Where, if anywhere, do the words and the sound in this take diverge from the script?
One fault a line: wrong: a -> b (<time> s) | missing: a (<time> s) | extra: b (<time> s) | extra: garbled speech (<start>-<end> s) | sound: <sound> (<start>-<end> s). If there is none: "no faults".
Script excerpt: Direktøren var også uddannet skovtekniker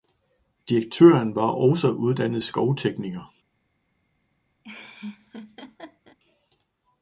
sound: laugh (4.6-6.2 s)